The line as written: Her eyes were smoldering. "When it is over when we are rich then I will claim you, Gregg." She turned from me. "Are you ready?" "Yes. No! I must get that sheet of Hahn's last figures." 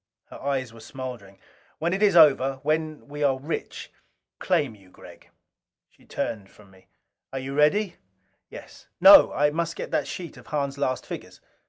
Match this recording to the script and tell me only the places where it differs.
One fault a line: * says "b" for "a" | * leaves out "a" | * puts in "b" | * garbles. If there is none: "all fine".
* leaves out "then I will"